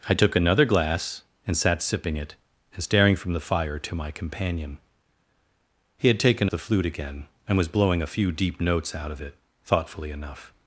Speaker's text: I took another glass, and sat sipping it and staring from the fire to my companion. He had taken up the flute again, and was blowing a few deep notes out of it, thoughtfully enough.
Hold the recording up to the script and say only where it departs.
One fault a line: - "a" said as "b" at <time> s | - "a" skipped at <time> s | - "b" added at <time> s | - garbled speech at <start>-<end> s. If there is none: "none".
- "up" skipped at 6.5 s